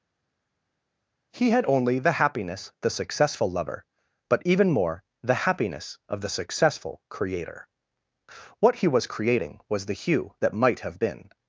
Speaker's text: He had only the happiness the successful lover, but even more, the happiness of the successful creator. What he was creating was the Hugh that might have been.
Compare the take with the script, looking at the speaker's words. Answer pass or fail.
pass